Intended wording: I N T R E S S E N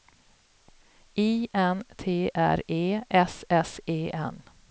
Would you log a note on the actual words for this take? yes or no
no